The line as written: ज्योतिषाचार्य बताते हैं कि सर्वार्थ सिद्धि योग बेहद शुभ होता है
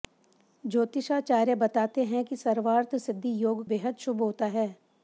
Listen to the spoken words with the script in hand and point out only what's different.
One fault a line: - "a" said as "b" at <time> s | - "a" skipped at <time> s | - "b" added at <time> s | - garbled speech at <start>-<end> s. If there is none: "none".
none